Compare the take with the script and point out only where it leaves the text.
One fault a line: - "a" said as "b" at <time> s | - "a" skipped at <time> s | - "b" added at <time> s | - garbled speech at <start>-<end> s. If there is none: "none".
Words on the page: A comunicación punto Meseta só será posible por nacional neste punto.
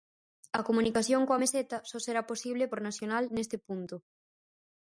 - "punto" said as "coa" at 1.3 s